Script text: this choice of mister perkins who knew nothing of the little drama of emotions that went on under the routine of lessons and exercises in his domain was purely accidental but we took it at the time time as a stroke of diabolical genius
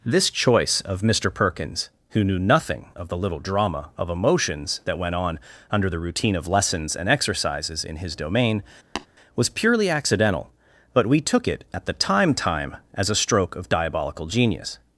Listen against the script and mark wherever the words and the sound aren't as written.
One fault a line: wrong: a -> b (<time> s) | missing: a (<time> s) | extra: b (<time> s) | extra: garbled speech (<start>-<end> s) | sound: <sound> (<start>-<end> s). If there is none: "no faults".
sound: tap (9.0-9.1 s)